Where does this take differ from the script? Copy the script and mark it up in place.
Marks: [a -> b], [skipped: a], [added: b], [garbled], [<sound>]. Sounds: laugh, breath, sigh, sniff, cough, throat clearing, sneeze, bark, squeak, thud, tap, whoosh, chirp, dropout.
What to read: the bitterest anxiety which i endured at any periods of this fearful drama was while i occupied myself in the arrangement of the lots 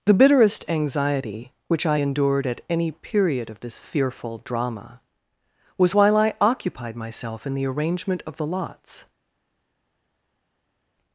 the bitterest anxiety which i endured at any [periods -> period] of this fearful drama was while i occupied myself in the arrangement of the lots